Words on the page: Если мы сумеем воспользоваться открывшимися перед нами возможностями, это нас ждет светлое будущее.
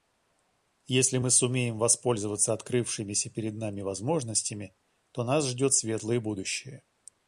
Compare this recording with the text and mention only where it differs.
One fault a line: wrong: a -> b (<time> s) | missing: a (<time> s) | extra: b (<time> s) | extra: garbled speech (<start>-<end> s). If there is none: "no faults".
wrong: это -> то (5.1 s)